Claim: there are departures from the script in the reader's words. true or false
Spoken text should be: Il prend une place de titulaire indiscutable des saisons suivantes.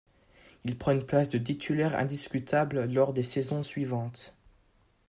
true